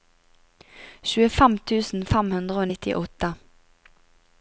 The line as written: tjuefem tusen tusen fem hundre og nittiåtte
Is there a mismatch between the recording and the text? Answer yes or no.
yes